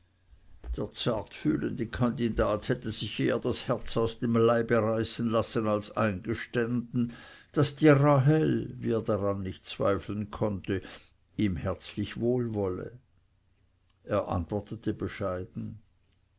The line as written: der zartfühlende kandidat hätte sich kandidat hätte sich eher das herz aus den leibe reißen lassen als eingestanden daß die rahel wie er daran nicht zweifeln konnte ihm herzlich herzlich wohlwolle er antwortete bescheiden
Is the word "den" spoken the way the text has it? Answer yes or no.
no